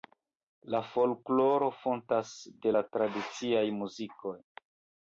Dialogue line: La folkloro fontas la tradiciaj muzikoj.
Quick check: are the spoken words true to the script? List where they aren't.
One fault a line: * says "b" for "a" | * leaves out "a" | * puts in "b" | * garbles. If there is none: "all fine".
* puts in "de"